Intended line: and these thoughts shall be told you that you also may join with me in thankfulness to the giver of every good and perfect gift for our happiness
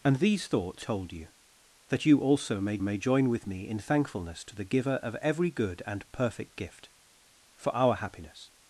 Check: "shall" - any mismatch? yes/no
yes